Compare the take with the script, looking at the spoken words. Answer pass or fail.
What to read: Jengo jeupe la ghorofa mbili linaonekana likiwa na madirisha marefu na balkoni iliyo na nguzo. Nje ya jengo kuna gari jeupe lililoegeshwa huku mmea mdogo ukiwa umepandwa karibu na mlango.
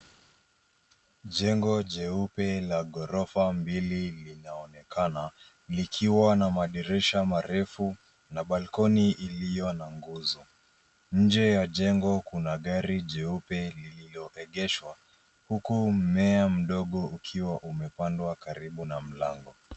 pass